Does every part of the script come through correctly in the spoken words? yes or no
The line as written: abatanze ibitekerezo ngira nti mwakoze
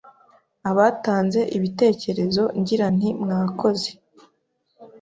yes